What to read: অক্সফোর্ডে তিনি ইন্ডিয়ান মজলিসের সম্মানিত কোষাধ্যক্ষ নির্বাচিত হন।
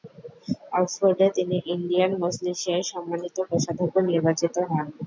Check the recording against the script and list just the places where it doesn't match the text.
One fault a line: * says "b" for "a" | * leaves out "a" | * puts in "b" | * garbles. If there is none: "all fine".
all fine